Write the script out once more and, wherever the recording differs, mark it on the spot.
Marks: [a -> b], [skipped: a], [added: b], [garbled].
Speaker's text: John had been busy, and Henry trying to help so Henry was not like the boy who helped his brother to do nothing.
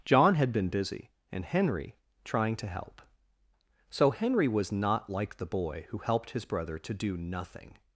John had been busy, and Henry trying to help so Henry was not like the boy who helped his brother to do nothing.